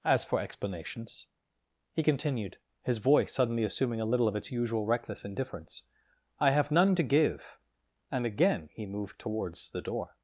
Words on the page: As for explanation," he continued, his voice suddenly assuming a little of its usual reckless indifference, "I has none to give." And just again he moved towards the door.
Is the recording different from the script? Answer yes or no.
yes